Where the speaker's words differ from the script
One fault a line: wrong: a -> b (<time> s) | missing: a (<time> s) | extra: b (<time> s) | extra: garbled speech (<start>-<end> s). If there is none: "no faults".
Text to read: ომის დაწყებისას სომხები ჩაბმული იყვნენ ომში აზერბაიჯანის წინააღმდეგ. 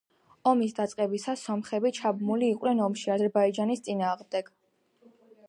no faults